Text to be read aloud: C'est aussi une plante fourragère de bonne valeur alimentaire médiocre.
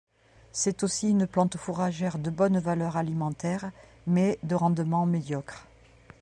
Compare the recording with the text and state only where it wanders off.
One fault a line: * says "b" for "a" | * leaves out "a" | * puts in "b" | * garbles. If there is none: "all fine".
* puts in "mais de rendement"